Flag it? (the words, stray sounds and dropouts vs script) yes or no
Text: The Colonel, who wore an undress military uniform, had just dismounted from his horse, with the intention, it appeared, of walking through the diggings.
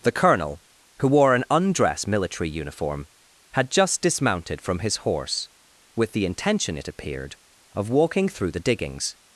no